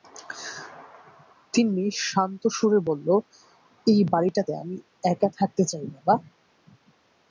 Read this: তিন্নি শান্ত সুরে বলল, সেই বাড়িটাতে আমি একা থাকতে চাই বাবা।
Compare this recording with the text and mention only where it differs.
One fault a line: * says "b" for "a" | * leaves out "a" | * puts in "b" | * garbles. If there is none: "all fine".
* says "এই" for "সেই"